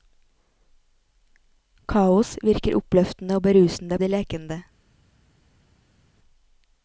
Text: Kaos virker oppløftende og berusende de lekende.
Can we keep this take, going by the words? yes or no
yes